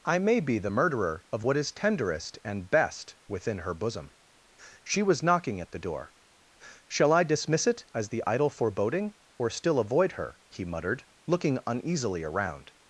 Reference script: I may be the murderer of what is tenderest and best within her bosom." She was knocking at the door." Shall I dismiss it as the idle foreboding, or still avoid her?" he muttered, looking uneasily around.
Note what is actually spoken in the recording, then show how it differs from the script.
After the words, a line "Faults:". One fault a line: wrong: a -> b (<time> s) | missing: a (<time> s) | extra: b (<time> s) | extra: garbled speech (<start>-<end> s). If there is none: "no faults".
I may be the murderer of what is tenderest and best within her bosom." She was knocking at the door." Shall I dismiss it as the idle foreboding, or still avoid her?" he muttered, looking uneasily around.
Faults:
no faults